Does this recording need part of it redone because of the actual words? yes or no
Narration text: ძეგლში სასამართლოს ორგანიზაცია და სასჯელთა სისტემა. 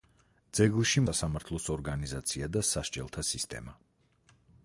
no